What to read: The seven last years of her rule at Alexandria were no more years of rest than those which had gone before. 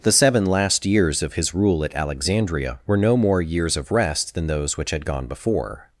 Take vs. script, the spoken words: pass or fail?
fail